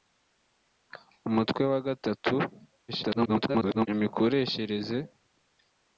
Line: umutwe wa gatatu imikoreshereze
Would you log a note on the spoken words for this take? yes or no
yes